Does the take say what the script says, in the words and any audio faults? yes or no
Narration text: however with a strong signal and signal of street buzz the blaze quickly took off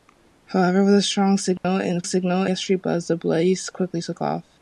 no